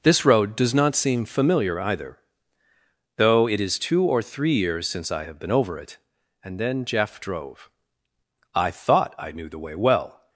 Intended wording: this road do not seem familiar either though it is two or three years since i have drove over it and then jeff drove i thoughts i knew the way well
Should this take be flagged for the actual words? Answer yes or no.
yes